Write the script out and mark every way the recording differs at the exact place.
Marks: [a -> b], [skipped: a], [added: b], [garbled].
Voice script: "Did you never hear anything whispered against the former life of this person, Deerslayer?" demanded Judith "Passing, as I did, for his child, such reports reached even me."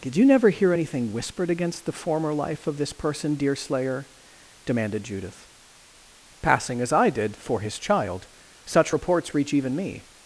"Did you never hear anything whispered against the former life of this person, Deerslayer?" demanded Judith "Passing, as I did, for his child, such reports [reached -> reach] even me."